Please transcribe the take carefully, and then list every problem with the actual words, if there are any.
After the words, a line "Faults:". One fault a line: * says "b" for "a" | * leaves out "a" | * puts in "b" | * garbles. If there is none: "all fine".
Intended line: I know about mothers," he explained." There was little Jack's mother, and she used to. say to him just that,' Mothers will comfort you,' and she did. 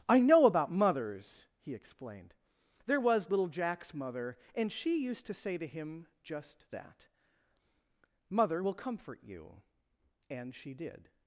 I know about mothers," he explained." There was little Jack's mother, and she used to. say to him just that,' Mother will comfort you,' and she did.
Faults:
* says "Mother" for "Mothers"